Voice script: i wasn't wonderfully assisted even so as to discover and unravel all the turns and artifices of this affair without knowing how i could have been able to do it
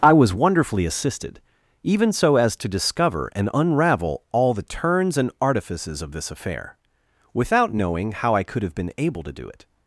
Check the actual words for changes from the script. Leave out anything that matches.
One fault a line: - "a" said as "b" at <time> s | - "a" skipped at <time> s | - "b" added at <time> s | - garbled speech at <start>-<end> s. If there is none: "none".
- "wasn't" said as "was" at 0.1 s